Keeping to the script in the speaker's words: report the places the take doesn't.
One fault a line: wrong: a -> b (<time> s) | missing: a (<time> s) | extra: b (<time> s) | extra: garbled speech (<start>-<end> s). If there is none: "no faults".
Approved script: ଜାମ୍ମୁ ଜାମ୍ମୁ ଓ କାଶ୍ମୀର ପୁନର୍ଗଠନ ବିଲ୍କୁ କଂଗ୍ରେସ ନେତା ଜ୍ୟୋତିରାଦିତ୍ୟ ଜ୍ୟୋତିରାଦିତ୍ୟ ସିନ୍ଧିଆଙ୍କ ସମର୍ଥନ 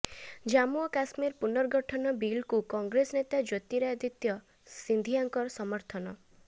missing: ଜାମ୍ମୁ (0.8 s)
missing: ଜ୍ୟୋତିରାଦିତ୍ୟ (4.4 s)